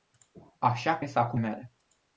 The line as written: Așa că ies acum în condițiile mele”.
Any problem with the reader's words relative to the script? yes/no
yes